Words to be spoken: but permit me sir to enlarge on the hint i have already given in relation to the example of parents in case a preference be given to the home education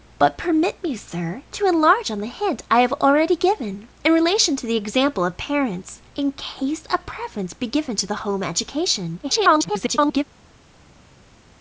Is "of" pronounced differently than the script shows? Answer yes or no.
no